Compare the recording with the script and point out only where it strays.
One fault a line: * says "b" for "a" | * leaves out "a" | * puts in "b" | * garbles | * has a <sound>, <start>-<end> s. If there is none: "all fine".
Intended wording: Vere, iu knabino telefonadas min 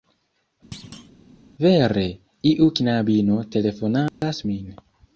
* has a thud, 0.7-1.1 s
* has a dropout, 4.1-4.2 s